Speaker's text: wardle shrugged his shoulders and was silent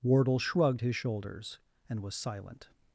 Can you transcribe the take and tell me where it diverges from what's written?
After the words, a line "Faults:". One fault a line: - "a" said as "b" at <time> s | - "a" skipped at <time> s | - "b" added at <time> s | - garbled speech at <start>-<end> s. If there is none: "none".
wardle shrugged his shoulders and was silent
Faults:
none